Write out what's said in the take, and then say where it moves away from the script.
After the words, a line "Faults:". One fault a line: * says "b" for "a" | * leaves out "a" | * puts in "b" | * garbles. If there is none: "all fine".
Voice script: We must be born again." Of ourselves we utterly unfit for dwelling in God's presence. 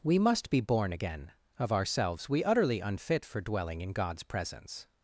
We must be born again." Of ourselves we utterly unfit for dwelling in God's presence.
Faults:
all fine